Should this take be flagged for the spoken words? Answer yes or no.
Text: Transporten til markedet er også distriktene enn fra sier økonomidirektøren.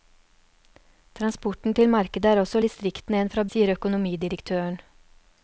no